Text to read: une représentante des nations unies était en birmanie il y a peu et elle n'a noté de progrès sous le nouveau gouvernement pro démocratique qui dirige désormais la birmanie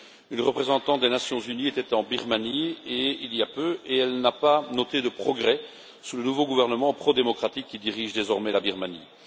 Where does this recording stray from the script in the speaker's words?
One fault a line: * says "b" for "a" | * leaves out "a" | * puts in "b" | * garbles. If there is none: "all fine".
* puts in "pas"